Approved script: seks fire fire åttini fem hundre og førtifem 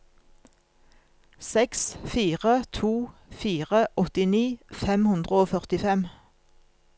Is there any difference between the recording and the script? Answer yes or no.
yes